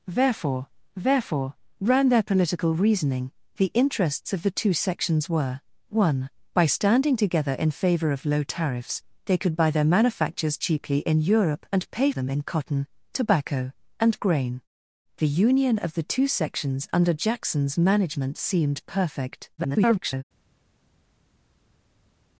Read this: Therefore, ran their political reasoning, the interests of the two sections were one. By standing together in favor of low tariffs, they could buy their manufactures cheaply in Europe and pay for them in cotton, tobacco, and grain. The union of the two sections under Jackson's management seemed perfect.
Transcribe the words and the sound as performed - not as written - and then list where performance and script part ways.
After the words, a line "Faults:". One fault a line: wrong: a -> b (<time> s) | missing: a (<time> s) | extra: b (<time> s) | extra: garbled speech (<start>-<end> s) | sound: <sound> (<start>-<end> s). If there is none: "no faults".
Therefore therefore, ran their political reasoning, the interests of the two sections were one. By standing together in favor of low tariffs, they could buy their manufactures cheaply in Europe and pay them in cotton, tobacco, and grain. The union of the two sections under Jackson's management seemed perfect. [garbled]
Faults:
extra: therefore (1.0 s)
missing: for (12.1 s)
extra: garbled speech (19.6-20.2 s)